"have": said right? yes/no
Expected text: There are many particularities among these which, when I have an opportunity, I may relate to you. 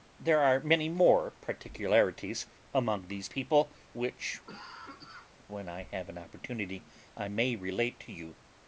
yes